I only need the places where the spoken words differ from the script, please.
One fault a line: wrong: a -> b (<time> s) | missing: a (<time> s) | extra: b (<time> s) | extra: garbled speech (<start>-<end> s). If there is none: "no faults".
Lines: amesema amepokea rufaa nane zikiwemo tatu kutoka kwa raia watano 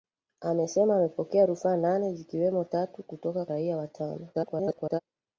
missing: kwa (3.5 s)
extra: garbled speech (4.3-5.0 s)